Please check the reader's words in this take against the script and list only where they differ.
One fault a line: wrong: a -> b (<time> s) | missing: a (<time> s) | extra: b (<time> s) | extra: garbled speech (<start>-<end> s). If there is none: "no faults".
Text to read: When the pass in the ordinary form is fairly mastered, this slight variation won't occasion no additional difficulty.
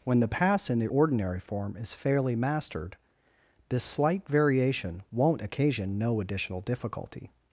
no faults